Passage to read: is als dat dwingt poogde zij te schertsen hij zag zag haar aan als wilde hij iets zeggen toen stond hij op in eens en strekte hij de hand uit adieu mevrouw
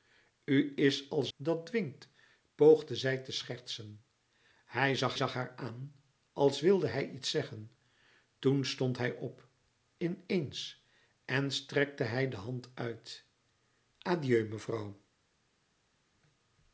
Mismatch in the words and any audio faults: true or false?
false